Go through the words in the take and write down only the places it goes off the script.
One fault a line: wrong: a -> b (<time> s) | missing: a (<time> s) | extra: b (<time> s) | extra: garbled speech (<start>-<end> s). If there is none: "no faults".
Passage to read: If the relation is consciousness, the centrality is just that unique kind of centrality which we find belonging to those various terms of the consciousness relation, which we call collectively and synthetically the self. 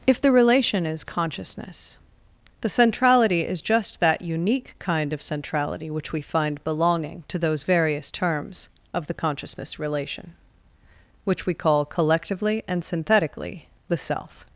no faults